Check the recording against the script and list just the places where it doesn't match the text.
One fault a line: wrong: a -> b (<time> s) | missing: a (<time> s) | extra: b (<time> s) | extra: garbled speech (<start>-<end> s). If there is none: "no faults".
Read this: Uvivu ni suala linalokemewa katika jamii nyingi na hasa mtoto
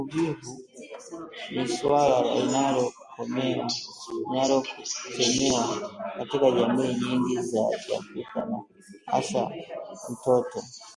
extra: za kiafrika (7.4 s)